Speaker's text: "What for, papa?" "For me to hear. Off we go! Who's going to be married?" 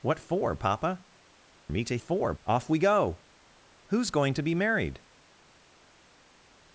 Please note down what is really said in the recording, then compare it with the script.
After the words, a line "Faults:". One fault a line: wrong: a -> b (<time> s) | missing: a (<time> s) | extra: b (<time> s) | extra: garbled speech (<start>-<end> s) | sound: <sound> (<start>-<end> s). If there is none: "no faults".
"What for, papa?" "Me to for. Off we go! Who's going to be married?"
Faults:
missing: For (1.1 s)
wrong: hear -> for (2.0 s)